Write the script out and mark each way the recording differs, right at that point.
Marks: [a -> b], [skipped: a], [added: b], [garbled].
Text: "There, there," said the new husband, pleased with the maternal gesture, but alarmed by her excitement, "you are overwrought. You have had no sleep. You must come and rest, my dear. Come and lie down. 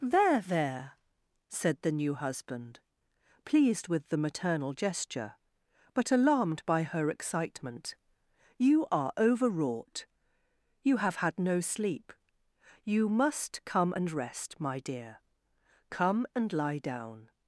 "There, there," said the new husband, pleased with the maternal gesture, but alarmed by her excitement, "you are overwrought. You have had no sleep. You must come and rest, my dear. Come and lie down.